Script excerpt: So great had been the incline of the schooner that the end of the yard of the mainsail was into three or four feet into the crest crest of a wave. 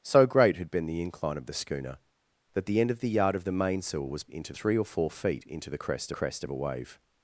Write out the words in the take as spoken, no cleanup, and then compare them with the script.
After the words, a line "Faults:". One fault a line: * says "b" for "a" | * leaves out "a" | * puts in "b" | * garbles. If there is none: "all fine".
So great had been the incline of the schooner that the end of the yard of the mainsail was into three or four feet into the crest crest of a wave.
Faults:
all fine